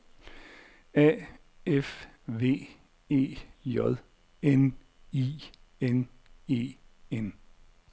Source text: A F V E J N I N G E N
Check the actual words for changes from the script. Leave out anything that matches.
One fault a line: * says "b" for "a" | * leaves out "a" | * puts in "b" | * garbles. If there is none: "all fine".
* leaves out "G"